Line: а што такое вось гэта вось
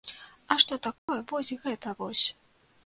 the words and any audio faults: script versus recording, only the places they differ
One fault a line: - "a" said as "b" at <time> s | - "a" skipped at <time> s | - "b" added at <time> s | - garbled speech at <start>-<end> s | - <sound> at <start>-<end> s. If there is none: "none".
- dropout at 1.0-1.1 s